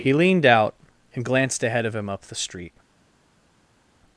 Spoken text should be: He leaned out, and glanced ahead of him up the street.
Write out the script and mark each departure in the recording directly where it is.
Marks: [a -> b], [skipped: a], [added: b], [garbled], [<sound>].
He leaned out, and glanced ahead of him up the street.